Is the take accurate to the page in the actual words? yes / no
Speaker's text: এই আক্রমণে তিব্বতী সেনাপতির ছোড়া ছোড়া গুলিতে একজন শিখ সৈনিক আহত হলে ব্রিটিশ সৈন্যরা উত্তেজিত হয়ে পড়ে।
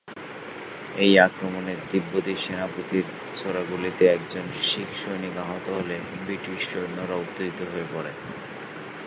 no